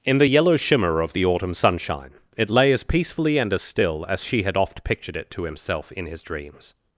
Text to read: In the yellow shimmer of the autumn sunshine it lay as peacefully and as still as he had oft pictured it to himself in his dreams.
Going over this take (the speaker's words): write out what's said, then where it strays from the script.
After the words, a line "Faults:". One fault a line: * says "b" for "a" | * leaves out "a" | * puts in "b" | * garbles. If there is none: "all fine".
In the yellow shimmer of the autumn sunshine it lay as peacefully and as still as she had oft pictured it to himself in his dreams.
Faults:
* says "she" for "he"